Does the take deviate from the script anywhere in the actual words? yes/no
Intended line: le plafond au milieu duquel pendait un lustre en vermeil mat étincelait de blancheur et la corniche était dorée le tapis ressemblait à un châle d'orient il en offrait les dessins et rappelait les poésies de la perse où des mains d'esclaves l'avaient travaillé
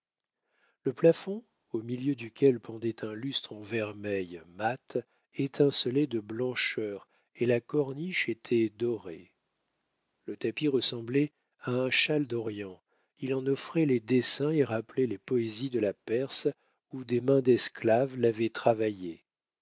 no